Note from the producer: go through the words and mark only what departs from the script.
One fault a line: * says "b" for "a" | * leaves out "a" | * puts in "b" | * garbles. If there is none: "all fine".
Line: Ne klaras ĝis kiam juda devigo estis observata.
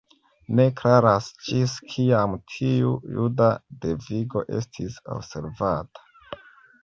* puts in "tiu"